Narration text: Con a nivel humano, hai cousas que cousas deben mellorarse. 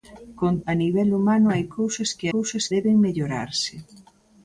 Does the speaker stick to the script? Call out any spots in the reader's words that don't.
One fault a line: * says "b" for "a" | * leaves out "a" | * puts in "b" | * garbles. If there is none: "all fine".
all fine